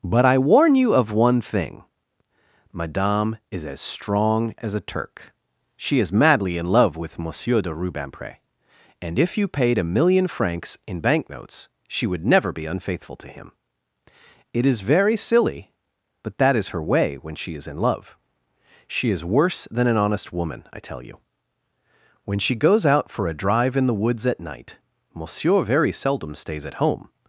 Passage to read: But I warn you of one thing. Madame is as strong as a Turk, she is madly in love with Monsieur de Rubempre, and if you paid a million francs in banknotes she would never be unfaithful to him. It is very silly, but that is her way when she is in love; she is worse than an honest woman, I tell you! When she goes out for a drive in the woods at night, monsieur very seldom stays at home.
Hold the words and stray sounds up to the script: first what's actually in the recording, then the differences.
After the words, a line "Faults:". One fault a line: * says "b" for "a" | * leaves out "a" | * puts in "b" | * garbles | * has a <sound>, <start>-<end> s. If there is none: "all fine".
But I warn you of one thing. Madame is as strong as a Turk, she is madly in love with Monsieur de Rubempre, and if you paid a million francs in banknotes she would never be unfaithful to him. It is very silly, but that is her way when she is in love; she is worse than an honest woman, I tell you! When she goes out for a drive in the woods at night, monsieur very seldom stays at home.
Faults:
all fine